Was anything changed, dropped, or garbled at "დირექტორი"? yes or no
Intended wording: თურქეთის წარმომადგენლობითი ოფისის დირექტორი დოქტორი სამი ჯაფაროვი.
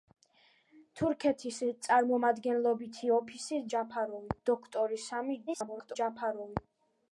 yes